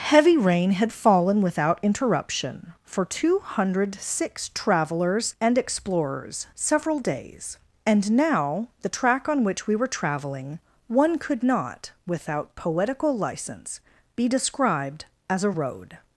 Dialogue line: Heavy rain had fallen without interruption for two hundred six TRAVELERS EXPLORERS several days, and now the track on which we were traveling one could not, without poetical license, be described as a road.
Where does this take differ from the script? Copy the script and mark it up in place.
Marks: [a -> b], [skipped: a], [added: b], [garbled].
Heavy rain had fallen without interruption for two hundred six TRAVELERS [added: AND] EXPLORERS several days, and now the track on which we were traveling one could not, without poetical license, be described as a road.